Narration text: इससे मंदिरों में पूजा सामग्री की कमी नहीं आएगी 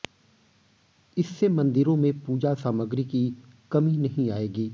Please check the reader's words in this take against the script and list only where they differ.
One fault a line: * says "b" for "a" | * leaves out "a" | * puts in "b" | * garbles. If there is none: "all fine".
all fine